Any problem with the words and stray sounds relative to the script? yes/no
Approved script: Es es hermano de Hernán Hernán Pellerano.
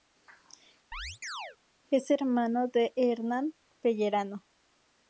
yes